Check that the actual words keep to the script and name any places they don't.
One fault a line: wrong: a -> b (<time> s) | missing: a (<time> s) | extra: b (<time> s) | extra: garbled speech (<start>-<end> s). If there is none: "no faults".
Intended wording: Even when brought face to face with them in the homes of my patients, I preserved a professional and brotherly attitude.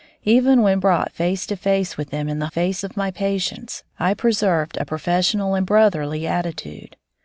wrong: homes -> face (2.5 s)